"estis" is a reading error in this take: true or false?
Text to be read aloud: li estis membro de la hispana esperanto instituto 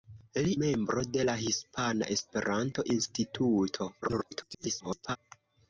true